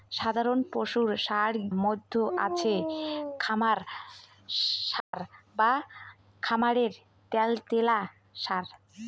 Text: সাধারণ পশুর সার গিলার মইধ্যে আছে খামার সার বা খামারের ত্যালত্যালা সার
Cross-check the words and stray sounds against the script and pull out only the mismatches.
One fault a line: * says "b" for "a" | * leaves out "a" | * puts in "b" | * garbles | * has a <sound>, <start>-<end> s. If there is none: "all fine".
* leaves out "গিলার"
* has a dropout, 5.0-5.1 s